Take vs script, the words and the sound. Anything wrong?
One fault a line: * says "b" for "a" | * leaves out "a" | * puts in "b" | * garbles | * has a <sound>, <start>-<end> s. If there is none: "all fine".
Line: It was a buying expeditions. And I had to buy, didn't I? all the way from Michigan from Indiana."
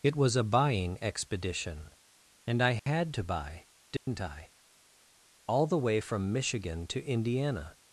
* says "expedition" for "expeditions"
* has a dropout, 2.8-2.9 s
* has a dropout, 4.0-4.1 s
* says "to" for "from"